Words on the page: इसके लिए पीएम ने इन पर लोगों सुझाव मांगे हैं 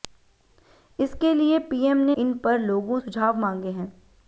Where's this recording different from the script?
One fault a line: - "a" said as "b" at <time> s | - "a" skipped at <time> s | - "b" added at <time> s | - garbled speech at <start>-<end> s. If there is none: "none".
none